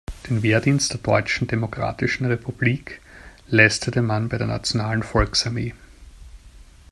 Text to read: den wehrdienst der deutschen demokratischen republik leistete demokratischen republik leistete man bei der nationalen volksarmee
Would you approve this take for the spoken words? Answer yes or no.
no